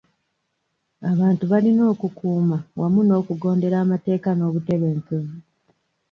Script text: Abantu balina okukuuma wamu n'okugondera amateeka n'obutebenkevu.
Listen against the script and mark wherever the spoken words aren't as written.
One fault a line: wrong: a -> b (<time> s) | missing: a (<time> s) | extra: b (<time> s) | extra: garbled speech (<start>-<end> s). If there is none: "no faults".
no faults